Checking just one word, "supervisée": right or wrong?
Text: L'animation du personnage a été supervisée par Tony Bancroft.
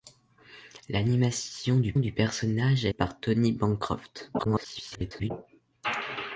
wrong